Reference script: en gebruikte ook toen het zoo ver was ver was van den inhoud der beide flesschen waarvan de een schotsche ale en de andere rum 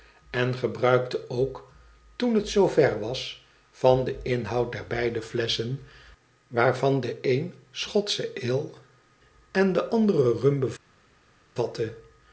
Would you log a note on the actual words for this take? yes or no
yes